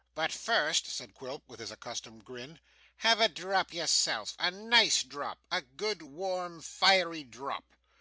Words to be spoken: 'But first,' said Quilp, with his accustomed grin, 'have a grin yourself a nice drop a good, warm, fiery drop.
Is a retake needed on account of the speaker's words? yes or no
yes